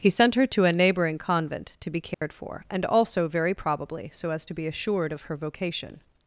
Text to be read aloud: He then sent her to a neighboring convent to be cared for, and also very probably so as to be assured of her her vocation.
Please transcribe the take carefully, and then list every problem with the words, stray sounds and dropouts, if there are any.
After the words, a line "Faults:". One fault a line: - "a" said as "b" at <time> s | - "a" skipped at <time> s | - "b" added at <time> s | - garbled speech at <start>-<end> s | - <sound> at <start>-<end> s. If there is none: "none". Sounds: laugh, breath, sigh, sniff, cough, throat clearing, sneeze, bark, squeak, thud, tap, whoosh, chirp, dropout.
He sent her to a neighboring convent to be cared for, and also very probably so as to be assured of her vocation.
Faults:
- "then" skipped at 0.1 s
- dropout at 2.1-2.2 s
- "her" skipped at 5.4 s